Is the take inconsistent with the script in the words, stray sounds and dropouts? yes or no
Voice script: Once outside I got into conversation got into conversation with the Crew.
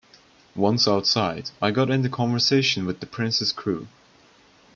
yes